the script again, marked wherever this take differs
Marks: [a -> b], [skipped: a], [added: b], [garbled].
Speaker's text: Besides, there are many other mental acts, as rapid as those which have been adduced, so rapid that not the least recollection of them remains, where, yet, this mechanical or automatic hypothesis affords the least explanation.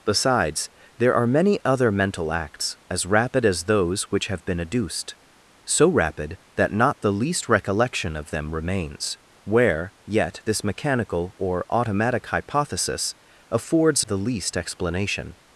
Besides, there are many other mental acts, as rapid as those which have been adduced, so rapid that not the least recollection of them remains, where, yet, this mechanical or automatic hypothesis affords the least explanation.